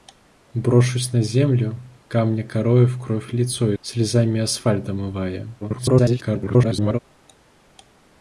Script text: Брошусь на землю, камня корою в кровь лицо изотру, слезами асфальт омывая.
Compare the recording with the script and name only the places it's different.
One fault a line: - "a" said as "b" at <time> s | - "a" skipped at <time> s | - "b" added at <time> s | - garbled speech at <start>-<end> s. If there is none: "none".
- "изотру" skipped at 3.8 s
- garbled speech at 5.6-7.0 s